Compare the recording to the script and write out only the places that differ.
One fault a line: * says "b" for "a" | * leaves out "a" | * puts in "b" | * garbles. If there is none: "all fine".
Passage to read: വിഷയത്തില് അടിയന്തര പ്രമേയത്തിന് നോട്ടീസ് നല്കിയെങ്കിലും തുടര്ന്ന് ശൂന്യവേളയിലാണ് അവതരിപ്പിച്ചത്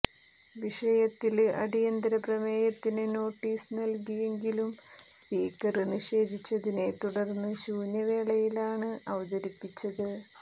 * puts in "സ്പീക്കര് നിഷേധിച്ചതിനെ"